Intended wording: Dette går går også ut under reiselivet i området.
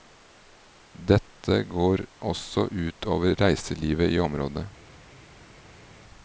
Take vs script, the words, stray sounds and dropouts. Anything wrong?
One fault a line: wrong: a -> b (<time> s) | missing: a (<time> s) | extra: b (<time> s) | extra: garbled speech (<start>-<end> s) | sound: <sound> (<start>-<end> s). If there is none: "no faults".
missing: går (2.0 s)
wrong: under -> over (3.2 s)